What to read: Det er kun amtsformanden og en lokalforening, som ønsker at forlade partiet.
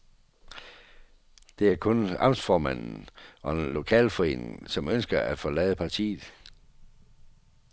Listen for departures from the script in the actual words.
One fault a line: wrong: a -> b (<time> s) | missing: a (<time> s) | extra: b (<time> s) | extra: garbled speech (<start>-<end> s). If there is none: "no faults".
no faults